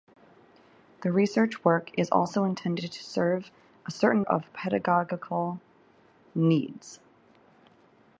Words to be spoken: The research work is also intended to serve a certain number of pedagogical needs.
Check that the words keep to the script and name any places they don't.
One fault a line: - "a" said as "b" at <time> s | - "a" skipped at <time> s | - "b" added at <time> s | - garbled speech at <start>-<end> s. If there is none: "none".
- "number" skipped at 4.2 s